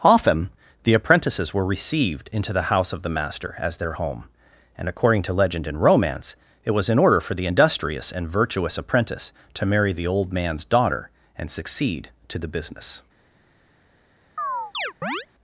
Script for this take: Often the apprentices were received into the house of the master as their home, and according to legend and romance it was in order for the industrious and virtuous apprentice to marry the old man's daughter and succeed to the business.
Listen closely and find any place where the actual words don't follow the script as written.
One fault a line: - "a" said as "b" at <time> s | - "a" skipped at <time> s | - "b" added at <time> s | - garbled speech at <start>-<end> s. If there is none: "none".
none